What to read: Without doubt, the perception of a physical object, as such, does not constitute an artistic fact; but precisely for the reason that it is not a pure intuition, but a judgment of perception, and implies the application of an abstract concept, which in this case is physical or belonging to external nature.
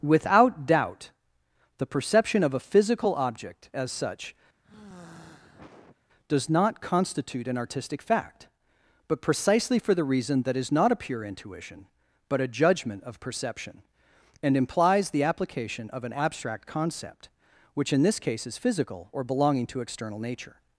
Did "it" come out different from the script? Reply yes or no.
yes